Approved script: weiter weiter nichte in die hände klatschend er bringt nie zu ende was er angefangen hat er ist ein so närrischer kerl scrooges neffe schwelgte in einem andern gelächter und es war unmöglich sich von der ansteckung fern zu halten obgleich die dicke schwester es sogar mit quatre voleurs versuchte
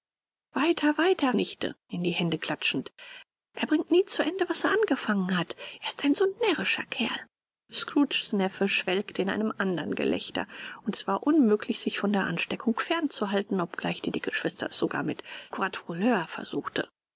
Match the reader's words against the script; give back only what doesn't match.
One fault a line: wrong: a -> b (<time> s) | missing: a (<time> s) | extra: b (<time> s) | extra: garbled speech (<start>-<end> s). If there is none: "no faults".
no faults